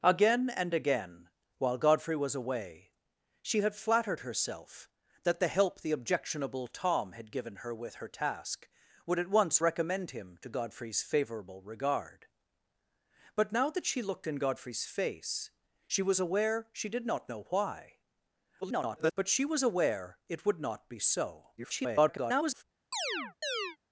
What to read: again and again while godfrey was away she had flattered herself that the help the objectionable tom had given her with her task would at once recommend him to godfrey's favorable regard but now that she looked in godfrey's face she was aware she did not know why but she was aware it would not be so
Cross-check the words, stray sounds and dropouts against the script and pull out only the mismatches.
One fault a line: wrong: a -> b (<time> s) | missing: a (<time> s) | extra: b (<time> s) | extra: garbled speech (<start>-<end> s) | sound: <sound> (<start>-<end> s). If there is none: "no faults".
extra: garbled speech (18.6-19.1 s)
extra: garbled speech (21.6-22.6 s)
sound: chirp (22.9-23.8 s)